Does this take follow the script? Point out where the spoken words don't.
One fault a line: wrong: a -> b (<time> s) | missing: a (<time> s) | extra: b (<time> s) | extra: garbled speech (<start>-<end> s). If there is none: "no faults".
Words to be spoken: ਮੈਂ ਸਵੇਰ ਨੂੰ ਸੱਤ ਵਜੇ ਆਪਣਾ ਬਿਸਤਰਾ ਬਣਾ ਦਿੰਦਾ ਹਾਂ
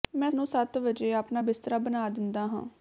missing: ਸਵੇਰ (0.3 s)